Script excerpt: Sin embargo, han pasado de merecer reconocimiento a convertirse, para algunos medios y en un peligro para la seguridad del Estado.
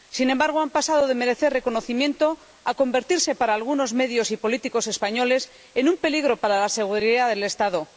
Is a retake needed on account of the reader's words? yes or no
yes